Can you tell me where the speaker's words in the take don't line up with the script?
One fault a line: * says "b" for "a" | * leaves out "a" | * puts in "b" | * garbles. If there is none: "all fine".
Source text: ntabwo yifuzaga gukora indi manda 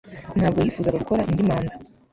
all fine